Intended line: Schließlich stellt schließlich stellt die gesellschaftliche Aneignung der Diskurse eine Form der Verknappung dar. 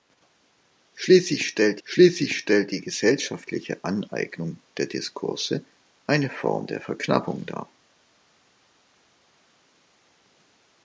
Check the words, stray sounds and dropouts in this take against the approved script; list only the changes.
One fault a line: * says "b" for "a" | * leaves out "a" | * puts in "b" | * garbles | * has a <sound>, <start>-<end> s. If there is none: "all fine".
all fine